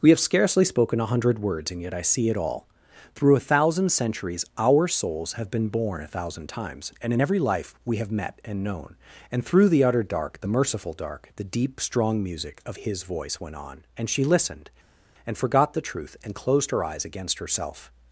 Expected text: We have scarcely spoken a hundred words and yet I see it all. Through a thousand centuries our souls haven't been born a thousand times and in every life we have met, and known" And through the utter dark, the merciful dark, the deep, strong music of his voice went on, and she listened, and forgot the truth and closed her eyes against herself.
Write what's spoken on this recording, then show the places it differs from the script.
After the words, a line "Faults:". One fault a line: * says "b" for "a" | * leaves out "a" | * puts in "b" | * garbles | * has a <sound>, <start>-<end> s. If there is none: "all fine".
We have scarcely spoken a hundred words and yet I see it all. Through a thousand centuries our souls have been born a thousand times and in every life we have met, and known" And through the utter dark, the merciful dark, the deep, strong music of his voice went on, and she listened, and forgot the truth and closed her eyes against herself.
Faults:
* says "have" for "haven't"